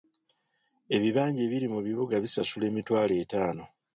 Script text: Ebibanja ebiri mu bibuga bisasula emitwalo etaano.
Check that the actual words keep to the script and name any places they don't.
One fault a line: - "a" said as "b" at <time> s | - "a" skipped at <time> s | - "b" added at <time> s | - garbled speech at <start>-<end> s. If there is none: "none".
none